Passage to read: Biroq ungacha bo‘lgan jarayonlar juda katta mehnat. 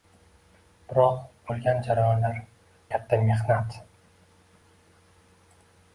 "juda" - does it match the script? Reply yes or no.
no